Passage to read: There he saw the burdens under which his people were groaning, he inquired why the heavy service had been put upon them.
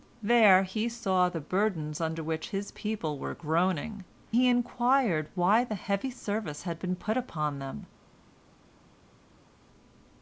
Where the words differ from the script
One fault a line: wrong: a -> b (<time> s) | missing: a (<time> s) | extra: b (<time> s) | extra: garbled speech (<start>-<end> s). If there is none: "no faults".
no faults